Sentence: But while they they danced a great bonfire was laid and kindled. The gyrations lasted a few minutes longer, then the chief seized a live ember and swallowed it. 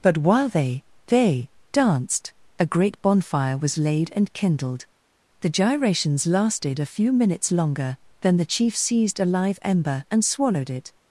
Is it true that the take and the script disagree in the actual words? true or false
false